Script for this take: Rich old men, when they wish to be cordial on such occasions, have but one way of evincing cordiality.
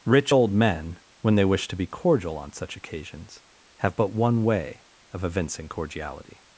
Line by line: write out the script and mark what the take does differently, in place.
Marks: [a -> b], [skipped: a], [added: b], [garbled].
Rich old men, when they wish to be cordial on such occasions, have but one way of evincing cordiality.